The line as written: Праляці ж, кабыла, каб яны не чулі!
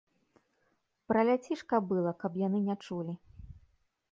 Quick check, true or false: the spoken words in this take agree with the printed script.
true